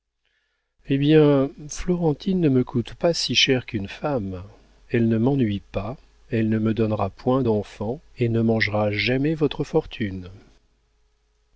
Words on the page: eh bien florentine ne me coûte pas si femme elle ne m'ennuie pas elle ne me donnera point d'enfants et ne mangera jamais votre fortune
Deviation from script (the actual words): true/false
true